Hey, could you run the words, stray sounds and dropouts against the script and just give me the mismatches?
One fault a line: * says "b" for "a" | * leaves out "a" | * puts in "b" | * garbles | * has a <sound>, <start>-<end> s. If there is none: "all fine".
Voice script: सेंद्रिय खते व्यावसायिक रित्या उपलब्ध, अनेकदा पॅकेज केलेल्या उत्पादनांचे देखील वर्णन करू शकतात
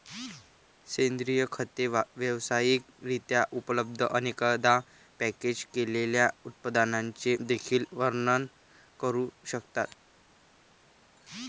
all fine